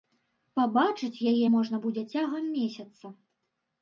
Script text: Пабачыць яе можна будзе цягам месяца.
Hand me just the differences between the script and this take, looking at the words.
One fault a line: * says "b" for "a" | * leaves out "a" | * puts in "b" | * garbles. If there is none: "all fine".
all fine